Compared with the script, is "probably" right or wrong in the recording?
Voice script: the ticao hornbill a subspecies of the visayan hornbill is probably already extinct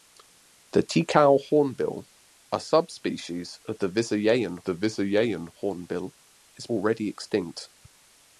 wrong